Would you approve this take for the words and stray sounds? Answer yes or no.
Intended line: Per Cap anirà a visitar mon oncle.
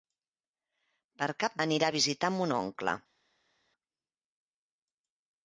yes